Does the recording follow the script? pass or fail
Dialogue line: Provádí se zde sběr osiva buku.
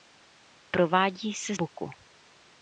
fail